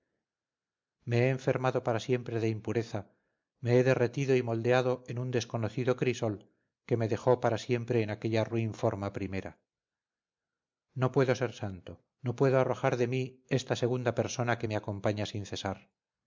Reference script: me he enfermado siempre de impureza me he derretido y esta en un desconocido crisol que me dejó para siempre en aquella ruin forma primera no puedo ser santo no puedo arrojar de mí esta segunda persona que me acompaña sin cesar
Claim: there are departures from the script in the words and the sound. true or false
true